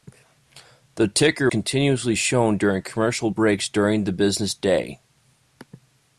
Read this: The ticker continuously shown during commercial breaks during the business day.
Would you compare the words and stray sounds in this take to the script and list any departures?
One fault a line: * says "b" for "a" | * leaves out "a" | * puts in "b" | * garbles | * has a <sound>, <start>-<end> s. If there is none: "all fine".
all fine